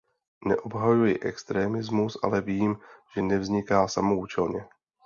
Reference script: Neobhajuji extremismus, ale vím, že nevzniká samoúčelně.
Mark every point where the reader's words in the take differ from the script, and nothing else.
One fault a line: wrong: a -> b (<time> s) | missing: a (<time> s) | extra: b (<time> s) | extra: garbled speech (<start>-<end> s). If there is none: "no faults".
no faults